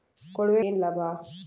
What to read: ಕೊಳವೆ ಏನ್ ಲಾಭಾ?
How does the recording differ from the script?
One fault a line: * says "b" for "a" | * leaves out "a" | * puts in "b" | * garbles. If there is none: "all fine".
all fine